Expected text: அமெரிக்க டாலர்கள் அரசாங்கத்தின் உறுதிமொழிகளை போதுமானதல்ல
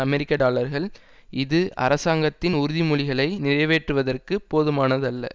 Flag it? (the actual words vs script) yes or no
yes